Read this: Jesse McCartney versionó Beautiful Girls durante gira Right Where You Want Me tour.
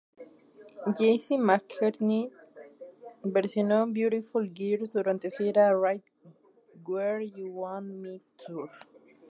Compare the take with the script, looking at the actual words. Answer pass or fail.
pass